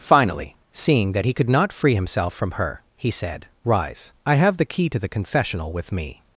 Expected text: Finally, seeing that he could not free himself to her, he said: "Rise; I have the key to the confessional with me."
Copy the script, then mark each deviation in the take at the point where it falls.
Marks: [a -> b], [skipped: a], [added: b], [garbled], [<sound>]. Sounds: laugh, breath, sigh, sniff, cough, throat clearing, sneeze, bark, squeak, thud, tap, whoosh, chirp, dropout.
Finally, seeing that he could not free himself [to -> from] her, he said: "Rise; I have the key to the confessional with me."